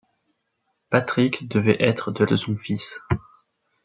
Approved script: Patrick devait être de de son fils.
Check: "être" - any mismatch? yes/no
no